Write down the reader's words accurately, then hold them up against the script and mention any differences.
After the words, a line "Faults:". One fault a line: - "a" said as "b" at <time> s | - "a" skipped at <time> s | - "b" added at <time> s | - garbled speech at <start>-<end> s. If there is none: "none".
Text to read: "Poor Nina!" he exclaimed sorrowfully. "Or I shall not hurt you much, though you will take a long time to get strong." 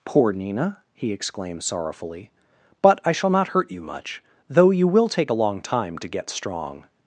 "Poor Nina!" he exclaimed sorrowfully. "But I shall not hurt you much, though you will take a long time to get strong."
Faults:
- "Or" said as "But" at 2.8 s